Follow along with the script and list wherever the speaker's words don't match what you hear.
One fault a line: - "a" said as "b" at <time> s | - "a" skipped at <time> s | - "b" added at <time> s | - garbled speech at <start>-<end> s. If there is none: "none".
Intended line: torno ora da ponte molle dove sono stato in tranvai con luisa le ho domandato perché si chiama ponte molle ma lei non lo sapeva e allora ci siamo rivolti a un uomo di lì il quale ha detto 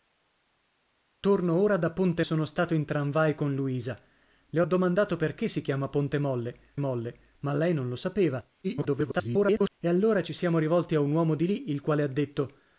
- "molle dove" skipped at 2.2 s
- "molle" added at 6.8 s
- garbled speech at 8.6-9.7 s